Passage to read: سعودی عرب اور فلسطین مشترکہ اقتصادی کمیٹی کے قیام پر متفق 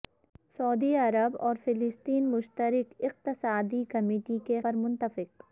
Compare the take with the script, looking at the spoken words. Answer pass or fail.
fail